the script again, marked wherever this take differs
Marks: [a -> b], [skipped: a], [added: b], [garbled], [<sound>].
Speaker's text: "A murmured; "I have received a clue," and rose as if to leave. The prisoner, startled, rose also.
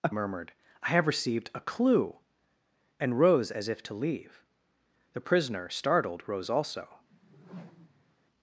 "A murmured; "I have received a clue," and rose as if to leave. The prisoner, startled, rose also. [whoosh]